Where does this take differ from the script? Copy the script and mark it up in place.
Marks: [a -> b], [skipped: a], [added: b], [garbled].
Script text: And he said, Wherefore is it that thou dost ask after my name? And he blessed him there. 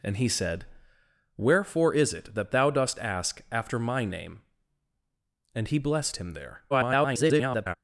And he said, Wherefore is it that thou dost ask after my name? And he blessed him there. [garbled]